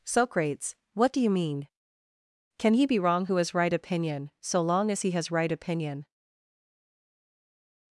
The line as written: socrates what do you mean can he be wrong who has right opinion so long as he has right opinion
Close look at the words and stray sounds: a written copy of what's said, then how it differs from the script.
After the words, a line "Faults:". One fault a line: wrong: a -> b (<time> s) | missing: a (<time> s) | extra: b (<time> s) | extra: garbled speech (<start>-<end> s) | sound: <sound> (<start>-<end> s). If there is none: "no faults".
socrates what do you mean can he be wrong who has right opinion so long as he has right opinion
Faults:
no faults